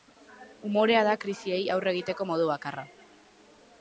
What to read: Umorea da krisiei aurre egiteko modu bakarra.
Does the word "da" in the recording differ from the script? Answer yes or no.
no